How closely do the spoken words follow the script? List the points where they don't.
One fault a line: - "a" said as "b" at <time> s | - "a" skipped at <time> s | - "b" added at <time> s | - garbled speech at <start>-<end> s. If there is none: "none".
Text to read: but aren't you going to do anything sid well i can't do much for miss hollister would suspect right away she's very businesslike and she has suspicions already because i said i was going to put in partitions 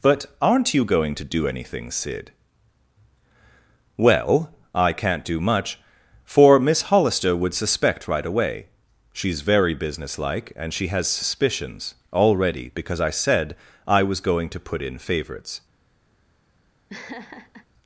- "partitions" said as "favorites" at 15.0 s